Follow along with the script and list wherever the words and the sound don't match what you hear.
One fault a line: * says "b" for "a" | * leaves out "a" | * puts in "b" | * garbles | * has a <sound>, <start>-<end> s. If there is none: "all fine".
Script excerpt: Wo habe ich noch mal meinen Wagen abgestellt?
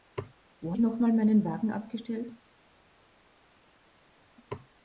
* leaves out "habe"